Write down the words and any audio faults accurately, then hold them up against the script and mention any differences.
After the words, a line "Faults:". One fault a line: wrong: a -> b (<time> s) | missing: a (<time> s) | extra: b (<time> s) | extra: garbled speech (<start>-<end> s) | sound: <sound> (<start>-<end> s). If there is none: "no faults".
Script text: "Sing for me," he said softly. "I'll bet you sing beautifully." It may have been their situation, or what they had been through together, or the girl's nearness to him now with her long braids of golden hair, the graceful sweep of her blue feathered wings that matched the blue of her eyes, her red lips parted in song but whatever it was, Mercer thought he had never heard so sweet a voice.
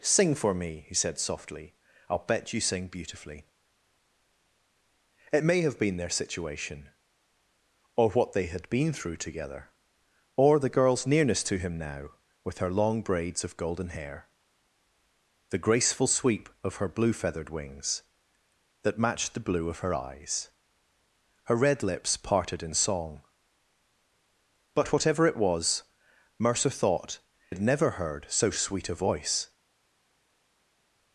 "Sing for me," he said softly. "I'll bet you sing beautifully." It may have been their situation, or what they had been through together, or the girl's nearness to him now with her long braids of golden hair, the graceful sweep of her blue feathered wings that matched the blue of her eyes, her red lips parted in song but whatever it was, Mercer thought had never heard so sweet a voice.
Faults:
missing: he (27.2 s)